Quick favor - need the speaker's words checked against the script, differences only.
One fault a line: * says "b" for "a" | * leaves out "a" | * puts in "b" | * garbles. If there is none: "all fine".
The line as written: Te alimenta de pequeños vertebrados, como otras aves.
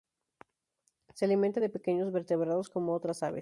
* says "Se" for "Te"